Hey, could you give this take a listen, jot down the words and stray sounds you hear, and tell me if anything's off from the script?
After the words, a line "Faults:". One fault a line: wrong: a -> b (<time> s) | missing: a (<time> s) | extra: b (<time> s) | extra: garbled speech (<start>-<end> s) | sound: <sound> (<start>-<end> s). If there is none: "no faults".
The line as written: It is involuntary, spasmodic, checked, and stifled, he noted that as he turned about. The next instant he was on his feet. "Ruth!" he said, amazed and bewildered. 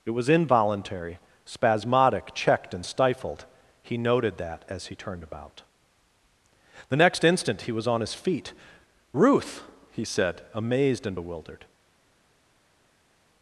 It was involuntary, spasmodic, checked, and stifled, he noted that as he turned about. The next instant he was on his feet. "Ruth!" he said, amazed and bewildered.
Faults:
wrong: is -> was (0.1 s)